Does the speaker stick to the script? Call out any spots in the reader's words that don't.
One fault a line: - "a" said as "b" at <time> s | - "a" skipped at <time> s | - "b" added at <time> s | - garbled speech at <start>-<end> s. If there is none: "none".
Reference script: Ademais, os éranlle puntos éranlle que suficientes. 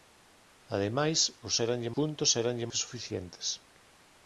none